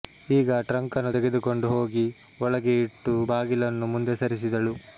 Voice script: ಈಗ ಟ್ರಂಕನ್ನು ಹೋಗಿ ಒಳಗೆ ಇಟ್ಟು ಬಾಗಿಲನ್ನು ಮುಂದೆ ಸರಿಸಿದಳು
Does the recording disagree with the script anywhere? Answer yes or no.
yes